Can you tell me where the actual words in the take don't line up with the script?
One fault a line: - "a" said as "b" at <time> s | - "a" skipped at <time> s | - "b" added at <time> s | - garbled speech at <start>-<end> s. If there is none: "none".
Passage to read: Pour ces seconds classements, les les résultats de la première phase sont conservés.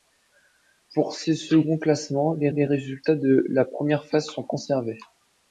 none